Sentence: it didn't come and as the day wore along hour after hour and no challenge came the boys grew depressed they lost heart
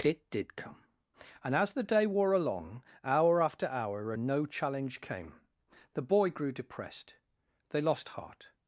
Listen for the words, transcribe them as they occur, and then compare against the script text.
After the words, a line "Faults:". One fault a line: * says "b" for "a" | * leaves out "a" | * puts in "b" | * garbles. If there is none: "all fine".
it did come and as the day wore along hour after hour and no challenge came the boy grew depressed they lost heart
Faults:
* says "did" for "didn't"
* says "boy" for "boys"